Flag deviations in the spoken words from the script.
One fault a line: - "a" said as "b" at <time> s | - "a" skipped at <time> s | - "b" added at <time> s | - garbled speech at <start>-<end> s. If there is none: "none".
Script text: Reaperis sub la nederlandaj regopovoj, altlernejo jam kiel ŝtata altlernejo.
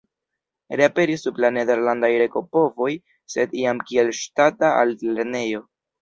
- "altlernejo" said as "sed" at 3.3 s